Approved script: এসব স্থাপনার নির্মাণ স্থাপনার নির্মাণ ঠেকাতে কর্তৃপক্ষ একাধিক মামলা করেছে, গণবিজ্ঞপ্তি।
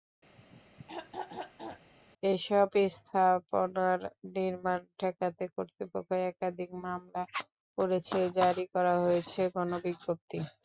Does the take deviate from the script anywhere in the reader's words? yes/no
yes